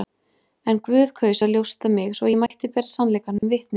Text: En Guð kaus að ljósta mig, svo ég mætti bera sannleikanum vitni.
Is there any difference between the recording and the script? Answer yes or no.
no